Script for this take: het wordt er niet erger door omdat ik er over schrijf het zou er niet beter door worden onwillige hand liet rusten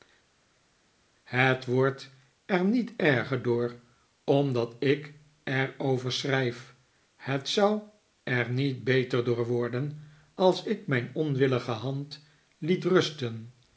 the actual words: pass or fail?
fail